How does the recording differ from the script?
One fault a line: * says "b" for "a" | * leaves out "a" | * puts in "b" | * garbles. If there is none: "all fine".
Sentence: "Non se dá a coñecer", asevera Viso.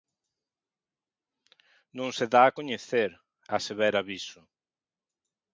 all fine